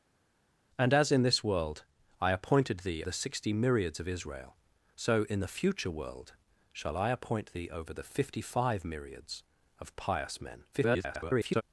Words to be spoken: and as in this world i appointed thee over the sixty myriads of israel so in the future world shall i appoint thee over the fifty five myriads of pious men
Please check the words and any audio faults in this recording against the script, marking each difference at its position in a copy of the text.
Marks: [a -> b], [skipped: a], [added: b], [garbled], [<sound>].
and as in this world i appointed thee [skipped: over] the sixty myriads of israel so in the future world shall i appoint thee over the fifty five myriads of pious men [garbled]